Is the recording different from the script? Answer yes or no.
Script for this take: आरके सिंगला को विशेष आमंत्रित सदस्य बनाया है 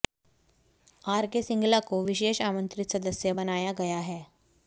yes